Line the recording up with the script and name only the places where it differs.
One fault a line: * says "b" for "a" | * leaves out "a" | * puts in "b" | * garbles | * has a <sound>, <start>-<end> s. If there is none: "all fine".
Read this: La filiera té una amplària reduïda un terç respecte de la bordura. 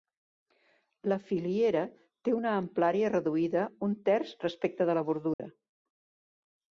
* has a dropout, 5.3-5.4 s